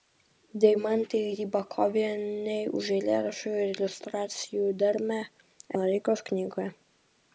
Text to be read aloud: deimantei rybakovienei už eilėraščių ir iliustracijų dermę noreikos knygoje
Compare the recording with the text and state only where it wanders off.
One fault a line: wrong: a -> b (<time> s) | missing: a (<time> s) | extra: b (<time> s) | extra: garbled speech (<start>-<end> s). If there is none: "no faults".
no faults